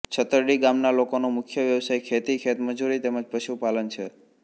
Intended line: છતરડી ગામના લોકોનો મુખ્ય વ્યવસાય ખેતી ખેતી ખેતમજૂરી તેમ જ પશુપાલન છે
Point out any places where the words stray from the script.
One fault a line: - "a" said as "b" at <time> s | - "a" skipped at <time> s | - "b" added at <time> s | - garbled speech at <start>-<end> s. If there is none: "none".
- "ખેતી" skipped at 2.4 s